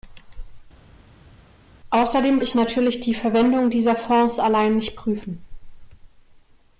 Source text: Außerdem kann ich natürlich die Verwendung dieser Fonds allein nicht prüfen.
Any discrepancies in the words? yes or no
yes